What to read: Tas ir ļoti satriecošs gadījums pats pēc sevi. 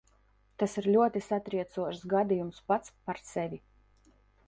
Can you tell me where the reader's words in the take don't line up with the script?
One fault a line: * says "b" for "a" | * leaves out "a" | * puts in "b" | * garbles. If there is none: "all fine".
* says "par" for "pēc"